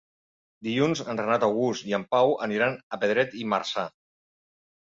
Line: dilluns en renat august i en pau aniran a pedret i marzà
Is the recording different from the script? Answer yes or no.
no